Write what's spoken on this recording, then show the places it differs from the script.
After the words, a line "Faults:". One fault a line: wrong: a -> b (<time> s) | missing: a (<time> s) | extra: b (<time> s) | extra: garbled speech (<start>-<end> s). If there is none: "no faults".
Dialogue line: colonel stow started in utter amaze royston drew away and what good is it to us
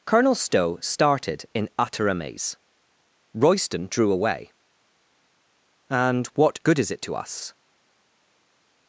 colonel stow started in utter amaze royston drew away and what good is it to us
Faults:
no faults